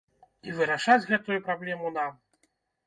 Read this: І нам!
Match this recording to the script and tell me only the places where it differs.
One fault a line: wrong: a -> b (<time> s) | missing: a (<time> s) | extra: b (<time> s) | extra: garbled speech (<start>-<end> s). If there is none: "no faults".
extra: вырашаць гэтую праблему (0.6 s)